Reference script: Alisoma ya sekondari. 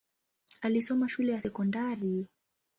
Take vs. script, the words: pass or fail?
fail